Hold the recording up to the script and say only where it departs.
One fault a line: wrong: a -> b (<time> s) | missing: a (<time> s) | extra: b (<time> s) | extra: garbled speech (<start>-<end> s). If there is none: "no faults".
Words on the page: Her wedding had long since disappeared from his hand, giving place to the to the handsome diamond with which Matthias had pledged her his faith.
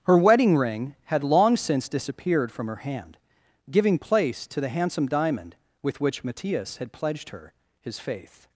extra: ring (0.6 s)
wrong: his -> her (2.7 s)
missing: to the (4.7 s)